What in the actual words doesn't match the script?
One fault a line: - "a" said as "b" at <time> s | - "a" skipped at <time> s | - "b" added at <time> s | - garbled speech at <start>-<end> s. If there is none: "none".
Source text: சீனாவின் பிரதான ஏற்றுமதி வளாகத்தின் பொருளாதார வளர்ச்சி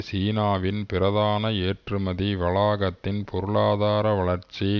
none